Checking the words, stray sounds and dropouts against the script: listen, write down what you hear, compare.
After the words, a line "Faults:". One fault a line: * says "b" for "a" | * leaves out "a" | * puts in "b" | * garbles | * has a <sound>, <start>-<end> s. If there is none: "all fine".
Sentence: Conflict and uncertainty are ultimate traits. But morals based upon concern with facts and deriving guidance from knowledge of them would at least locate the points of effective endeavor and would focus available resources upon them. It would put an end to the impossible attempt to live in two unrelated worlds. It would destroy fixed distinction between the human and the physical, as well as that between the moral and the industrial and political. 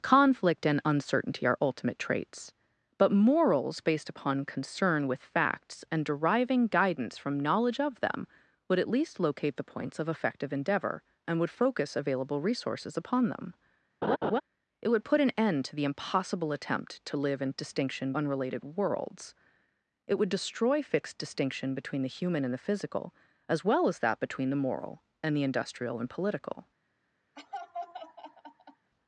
Conflict and uncertainty are ultimate traits. But morals based upon concern with facts and deriving guidance from knowledge of them would at least locate the points of effective endeavor and would focus available resources upon them. It would put an end to the impossible attempt to live in distinction unrelated worlds. It would destroy fixed distinction between the human and the physical, as well as that between the moral and the industrial and political.
Faults:
* has a laugh, 14.0-14.4 s
* says "distinction" for "two"
* has a laugh, 27.4-28.9 s